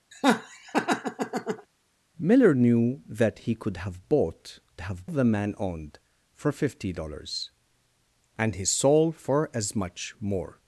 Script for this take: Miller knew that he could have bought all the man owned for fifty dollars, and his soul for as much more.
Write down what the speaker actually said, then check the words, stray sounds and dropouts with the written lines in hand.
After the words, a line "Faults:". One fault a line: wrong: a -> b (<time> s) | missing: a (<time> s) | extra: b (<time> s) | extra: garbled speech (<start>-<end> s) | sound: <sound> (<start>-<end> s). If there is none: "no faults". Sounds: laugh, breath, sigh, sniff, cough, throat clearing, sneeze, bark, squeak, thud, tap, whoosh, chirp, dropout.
Miller knew that he could have bought have the man owned for fifty dollars, and his soul for as much more.
Faults:
sound: laugh (0.1-1.7 s)
wrong: all -> have (4.8 s)